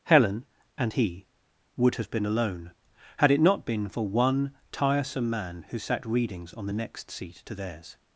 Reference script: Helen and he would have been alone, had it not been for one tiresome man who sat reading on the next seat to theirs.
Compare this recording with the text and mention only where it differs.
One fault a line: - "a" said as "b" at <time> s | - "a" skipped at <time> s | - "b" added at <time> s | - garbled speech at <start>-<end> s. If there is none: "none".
- "reading" said as "readings" at 6.1 s